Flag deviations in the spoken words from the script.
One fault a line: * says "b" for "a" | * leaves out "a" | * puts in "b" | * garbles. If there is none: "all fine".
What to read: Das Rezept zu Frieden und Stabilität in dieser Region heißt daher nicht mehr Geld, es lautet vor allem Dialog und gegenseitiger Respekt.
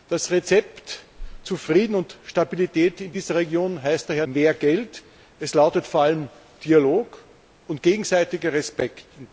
* leaves out "nicht"